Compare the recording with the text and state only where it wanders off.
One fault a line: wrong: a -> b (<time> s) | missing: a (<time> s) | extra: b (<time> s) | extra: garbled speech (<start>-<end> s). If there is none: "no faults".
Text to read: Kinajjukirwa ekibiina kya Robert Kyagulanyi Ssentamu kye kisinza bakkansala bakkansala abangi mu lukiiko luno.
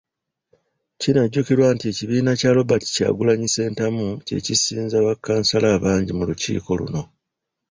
extra: nti (1.8 s)
missing: bakkansala (5.7 s)